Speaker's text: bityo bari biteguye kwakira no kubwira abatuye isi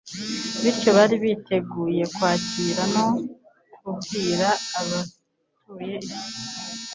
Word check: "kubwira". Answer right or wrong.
right